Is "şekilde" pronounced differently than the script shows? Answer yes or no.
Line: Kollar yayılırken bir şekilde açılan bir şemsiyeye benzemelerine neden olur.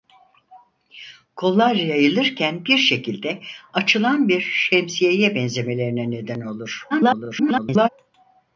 no